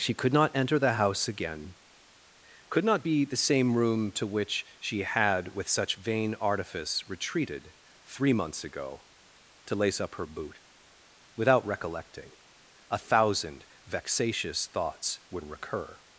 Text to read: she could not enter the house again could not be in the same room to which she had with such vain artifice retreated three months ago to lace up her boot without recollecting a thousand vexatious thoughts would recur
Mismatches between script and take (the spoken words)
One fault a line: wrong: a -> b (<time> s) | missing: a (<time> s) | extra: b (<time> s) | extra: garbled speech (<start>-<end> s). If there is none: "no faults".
missing: in (3.2 s)